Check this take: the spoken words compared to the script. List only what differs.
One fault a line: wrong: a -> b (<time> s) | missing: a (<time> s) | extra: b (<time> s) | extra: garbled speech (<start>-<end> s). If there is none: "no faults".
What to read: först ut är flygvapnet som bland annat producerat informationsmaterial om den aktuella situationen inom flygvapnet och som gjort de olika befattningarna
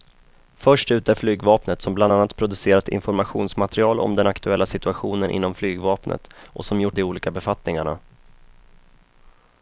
no faults